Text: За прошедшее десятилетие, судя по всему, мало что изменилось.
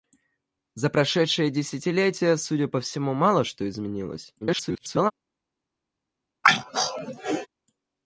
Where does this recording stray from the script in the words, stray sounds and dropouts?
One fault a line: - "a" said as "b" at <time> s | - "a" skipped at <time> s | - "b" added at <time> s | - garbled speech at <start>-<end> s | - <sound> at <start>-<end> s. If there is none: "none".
- garbled speech at 4.4-5.1 s
- throat clearing at 6.4-7.5 s